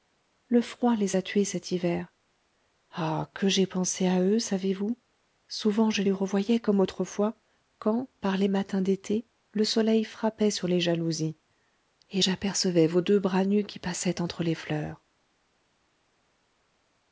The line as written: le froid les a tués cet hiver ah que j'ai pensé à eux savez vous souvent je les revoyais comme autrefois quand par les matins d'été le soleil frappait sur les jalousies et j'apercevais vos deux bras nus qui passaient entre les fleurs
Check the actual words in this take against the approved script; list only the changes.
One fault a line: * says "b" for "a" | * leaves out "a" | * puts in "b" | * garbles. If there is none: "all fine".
all fine